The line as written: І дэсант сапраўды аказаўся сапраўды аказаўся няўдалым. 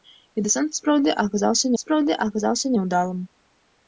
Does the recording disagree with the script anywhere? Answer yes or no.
no